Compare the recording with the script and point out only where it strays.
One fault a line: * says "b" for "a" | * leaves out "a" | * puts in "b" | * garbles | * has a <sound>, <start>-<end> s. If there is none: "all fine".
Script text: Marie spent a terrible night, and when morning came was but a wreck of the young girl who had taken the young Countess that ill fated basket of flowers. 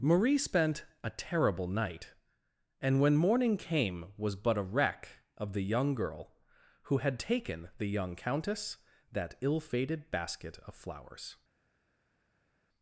all fine